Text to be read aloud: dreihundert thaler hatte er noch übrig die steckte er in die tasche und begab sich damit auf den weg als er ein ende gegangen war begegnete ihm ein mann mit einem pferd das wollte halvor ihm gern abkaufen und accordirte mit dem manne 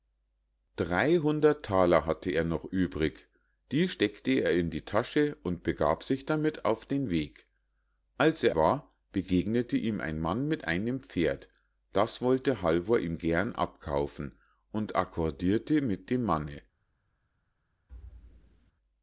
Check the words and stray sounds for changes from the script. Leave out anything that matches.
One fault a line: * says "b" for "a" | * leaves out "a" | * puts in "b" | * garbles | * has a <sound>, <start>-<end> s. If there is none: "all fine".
* leaves out "ein ende gegangen"
* has a thud, 17.9-18.7 s